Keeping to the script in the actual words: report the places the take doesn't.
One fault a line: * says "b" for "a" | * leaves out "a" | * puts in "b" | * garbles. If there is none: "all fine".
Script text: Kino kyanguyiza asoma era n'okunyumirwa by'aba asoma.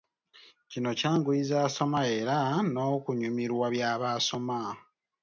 all fine